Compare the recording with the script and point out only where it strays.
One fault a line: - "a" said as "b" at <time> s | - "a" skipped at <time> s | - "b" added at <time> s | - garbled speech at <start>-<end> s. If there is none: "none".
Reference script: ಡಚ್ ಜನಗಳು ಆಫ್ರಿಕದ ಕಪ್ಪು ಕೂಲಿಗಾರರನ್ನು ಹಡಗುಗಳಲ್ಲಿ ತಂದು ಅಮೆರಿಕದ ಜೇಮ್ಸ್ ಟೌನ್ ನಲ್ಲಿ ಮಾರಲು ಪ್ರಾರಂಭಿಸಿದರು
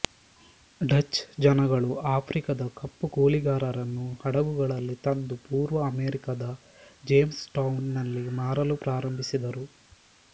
- "ಪೂರ್ವ" added at 5.5 s